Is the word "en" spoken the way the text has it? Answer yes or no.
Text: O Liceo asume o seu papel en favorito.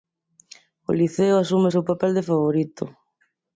no